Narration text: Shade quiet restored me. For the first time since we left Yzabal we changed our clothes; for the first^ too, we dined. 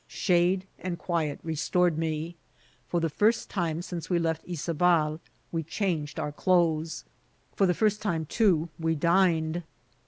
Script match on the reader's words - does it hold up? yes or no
no